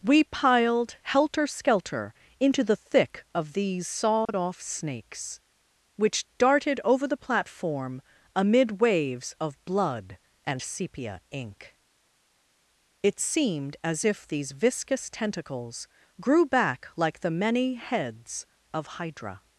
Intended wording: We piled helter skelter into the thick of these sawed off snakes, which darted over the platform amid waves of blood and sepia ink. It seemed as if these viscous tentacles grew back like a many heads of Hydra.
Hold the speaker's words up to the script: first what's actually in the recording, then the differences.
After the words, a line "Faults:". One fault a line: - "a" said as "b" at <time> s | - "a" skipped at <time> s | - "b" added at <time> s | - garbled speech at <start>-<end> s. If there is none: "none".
We piled helter skelter into the thick of these sawed off snakes, which darted over the platform amid waves of blood and sepia ink. It seemed as if these viscous tentacles grew back like the many heads of Hydra.
Faults:
- "a" said as "the" at 17.2 s